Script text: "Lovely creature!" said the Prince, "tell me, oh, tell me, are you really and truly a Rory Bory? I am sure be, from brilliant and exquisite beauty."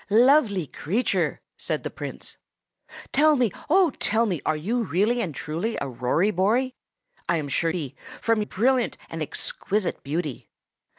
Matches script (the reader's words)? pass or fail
pass